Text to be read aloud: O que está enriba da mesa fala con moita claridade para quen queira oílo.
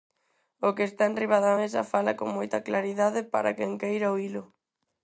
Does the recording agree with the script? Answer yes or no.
yes